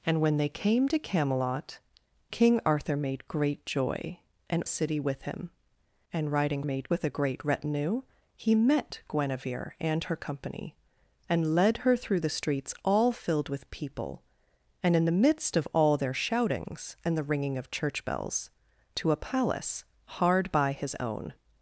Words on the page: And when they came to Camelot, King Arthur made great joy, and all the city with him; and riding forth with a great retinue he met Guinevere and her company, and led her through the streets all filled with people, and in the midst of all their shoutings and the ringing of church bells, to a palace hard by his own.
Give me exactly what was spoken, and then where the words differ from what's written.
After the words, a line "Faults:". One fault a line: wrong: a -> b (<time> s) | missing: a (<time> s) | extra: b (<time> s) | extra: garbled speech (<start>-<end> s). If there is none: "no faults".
And when they came to Camelot, King Arthur made great joy, and city with him; and riding made with a great retinue he met Guinevere and her company, and led her through the streets all filled with people, and in the midst of all their shoutings and the ringing of church bells, to a palace hard by his own.
Faults:
missing: all the (4.6 s)
wrong: forth -> made (6.6 s)